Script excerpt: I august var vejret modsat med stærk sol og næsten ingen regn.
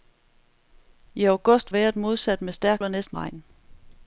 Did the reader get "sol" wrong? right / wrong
wrong